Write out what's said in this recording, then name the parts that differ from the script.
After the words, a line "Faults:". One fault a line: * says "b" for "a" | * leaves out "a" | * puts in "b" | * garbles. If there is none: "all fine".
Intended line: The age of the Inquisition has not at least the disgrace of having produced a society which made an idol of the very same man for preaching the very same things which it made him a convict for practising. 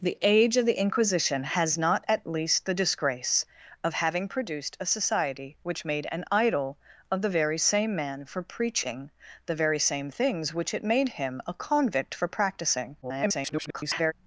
The age of the Inquisition has not at least the disgrace of having produced a society which made an idol of the very same man for preaching the very same things which it made him a convict for practising. [garbled]
Faults:
* garbles